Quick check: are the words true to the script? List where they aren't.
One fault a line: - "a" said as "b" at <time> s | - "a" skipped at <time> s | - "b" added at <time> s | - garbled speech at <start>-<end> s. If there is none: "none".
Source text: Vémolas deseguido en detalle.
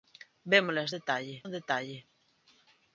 - "deseguido" said as "detalle" at 1.0 s